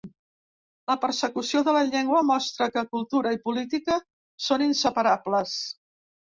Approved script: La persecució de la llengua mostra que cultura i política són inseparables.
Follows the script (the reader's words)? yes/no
yes